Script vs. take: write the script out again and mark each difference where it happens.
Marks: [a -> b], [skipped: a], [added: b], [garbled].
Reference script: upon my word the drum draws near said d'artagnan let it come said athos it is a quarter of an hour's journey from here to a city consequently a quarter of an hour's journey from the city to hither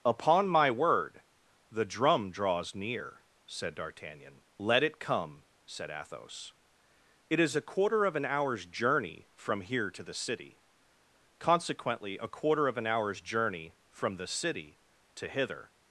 upon my word the drum draws near said d'artagnan let it come said athos it is a quarter of an hour's journey from here to [a -> the] city consequently a quarter of an hour's journey from the city to hither